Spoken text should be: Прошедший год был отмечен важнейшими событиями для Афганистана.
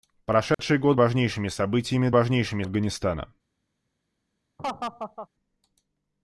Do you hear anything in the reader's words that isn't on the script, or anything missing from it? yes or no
yes